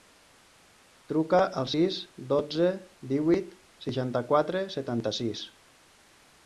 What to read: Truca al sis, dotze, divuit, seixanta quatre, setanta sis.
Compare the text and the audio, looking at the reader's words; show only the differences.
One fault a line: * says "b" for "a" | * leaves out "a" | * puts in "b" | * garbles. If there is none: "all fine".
all fine